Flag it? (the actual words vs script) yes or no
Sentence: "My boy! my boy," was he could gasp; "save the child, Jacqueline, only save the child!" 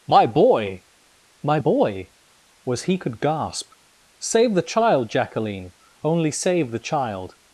no